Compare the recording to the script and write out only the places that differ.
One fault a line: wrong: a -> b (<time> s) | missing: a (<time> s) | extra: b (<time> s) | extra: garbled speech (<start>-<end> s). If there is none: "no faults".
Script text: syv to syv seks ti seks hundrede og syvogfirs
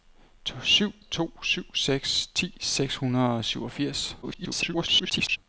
extra: garbled speech (4.2-5.4 s)